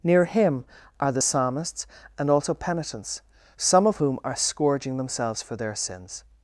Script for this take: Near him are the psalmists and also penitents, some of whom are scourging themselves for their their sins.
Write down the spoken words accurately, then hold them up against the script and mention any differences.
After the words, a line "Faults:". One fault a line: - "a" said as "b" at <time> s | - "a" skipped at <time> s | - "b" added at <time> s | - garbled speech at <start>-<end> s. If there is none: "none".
Near him are the psalmists and also penitents, some of whom are scourging themselves for their sins.
Faults:
- "their" skipped at 5.7 s